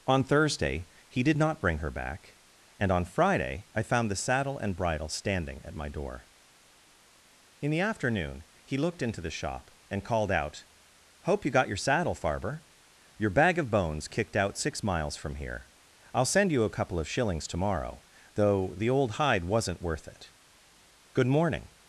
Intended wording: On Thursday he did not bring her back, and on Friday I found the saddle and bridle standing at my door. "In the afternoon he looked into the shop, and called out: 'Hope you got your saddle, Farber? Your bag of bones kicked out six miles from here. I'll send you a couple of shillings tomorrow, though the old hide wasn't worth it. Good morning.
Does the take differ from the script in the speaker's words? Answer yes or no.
no